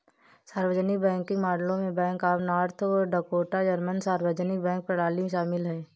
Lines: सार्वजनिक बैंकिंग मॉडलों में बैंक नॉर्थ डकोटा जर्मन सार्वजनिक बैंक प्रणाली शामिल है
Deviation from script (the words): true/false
true